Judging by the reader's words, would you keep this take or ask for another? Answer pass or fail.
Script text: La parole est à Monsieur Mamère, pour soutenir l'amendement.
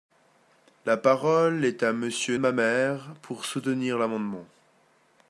pass